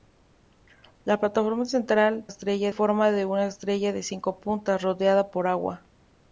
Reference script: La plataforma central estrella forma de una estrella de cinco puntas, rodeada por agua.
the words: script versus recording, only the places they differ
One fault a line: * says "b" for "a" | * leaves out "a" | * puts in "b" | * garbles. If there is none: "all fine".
all fine